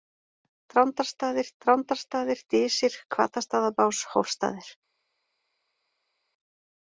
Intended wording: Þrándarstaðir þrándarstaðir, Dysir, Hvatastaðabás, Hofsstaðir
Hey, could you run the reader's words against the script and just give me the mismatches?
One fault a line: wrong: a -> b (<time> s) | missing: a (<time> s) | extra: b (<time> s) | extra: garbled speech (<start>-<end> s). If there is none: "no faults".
no faults